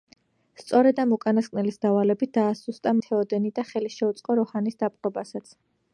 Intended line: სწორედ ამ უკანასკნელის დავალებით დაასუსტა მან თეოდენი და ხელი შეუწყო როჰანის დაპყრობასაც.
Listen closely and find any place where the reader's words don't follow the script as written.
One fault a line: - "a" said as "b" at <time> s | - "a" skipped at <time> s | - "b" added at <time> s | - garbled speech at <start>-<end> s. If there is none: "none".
- "მან" skipped at 2.9 s